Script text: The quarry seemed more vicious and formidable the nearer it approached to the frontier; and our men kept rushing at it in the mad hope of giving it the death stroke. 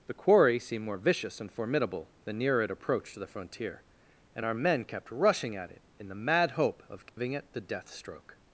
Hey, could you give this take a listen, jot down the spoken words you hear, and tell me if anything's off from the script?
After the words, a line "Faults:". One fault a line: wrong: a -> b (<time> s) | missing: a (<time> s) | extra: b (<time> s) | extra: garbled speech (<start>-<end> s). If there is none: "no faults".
The quarry seemed more vicious and formidable the nearer it approached to the frontier; and our men kept rushing at it in the mad hope of giving it the death stroke.
Faults:
no faults